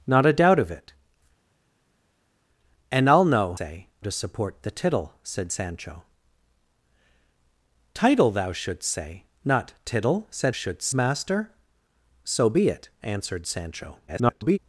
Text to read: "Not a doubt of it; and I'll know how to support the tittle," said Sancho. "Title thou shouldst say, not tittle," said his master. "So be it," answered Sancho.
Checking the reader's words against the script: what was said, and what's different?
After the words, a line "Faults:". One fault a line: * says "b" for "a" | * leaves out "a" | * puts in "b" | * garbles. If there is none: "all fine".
"Not a doubt of it; and I'll know say to support the tittle," said Sancho. "Title thou shouldst say, not tittle," said shouldst master. "So be it," answered Sancho. [garbled]
Faults:
* says "say" for "how"
* says "shouldst" for "his"
* garbles